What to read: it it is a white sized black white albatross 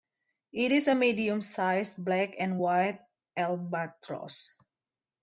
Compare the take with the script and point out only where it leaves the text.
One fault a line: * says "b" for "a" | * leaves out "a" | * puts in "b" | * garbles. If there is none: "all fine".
* leaves out "it"
* says "medium" for "white"
* puts in "and"